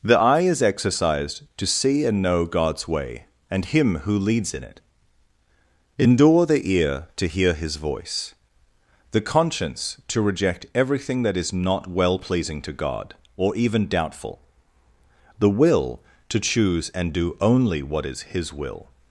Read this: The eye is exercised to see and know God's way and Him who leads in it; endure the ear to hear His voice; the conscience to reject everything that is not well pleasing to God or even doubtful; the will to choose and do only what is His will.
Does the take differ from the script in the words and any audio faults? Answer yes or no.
no